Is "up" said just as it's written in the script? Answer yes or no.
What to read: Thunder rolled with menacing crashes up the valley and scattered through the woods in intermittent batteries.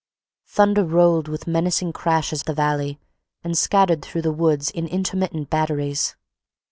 no